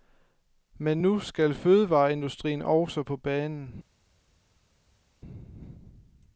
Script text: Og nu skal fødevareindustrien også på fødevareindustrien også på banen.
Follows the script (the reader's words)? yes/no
no